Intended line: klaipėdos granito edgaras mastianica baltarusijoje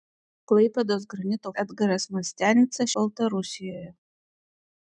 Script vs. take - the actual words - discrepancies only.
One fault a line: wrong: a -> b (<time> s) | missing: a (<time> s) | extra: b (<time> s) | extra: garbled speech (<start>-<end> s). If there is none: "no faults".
no faults